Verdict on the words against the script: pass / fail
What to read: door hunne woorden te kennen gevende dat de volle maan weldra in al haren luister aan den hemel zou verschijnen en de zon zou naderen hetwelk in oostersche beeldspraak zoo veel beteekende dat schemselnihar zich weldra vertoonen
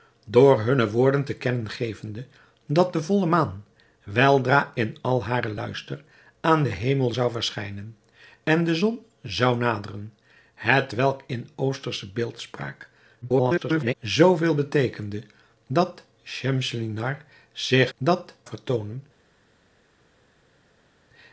fail